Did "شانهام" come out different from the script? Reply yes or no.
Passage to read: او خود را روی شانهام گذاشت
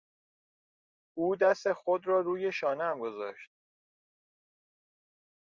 no